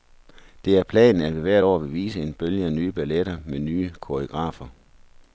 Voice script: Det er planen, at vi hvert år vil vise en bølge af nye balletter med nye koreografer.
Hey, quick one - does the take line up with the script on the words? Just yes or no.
yes